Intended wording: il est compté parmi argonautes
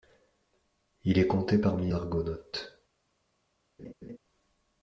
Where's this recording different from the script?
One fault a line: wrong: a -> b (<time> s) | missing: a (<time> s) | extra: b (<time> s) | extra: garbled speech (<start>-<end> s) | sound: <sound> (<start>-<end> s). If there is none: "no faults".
sound: laugh (3.8-4.2 s)